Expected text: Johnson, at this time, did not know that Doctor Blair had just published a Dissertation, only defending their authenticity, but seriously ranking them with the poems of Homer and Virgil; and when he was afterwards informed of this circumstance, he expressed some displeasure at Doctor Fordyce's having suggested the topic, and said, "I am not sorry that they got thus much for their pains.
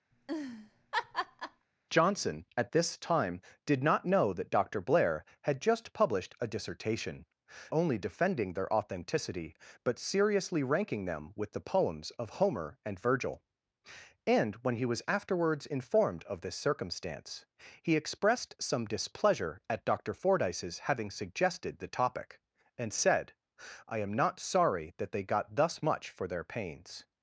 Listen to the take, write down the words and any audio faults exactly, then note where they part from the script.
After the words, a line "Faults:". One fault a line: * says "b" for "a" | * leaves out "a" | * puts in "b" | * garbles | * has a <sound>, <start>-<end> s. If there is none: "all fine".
Johnson, at this time, did not know that Doctor Blair had just published a Dissertation, only defending their authenticity, but seriously ranking them with the poems of Homer and Virgil; and when he was afterwards informed of this circumstance, he expressed some displeasure at Doctor Fordyce's having suggested the topic, and said, "I am not sorry that they got thus much for their pains.
Faults:
* has a laugh, 0.1-1.7 s